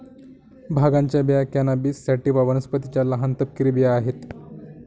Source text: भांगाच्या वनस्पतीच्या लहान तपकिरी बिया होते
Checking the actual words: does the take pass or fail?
fail